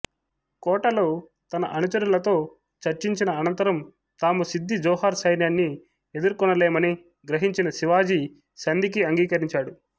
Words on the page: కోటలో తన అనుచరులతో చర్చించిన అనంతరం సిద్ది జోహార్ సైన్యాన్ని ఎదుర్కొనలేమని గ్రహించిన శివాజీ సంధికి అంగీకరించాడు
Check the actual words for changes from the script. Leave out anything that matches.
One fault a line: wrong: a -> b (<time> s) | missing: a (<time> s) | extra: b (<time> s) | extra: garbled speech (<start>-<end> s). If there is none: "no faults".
extra: తాము (4.2 s)